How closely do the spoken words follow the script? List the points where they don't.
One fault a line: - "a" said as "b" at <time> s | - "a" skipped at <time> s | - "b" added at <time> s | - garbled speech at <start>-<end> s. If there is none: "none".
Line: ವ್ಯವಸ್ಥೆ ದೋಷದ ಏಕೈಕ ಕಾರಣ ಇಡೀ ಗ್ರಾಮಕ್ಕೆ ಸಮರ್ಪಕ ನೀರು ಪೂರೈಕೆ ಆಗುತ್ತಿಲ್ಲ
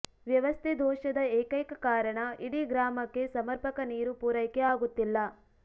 none